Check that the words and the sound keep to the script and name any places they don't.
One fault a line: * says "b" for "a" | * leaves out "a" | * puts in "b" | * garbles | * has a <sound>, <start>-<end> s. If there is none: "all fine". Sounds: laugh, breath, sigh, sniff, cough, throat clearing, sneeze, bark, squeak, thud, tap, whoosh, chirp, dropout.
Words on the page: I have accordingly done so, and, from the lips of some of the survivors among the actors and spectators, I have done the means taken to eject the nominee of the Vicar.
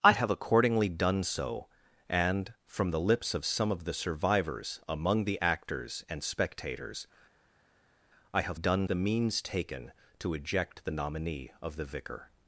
all fine